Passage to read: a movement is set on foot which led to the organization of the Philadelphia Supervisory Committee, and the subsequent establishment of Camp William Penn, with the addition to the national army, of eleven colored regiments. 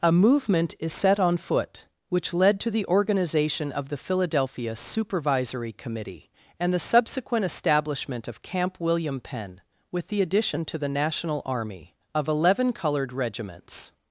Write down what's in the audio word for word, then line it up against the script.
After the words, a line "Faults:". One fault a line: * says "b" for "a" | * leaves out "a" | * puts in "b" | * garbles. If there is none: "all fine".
a movement is set on foot which led to the organization of the Philadelphia Supervisory Committee, and the subsequent establishment of Camp William Penn, with the addition to the national army, of eleven colored regiments.
Faults:
all fine